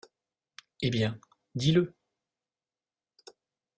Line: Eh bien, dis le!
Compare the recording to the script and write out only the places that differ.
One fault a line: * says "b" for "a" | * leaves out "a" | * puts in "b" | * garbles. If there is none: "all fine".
all fine